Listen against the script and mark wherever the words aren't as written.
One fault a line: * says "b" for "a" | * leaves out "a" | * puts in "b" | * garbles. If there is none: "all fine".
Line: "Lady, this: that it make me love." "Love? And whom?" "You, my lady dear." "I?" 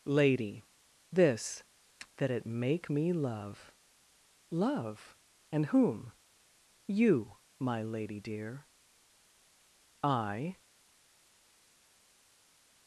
all fine